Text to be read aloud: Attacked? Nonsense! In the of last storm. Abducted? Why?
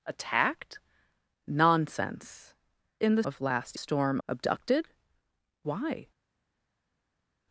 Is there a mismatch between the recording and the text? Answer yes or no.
no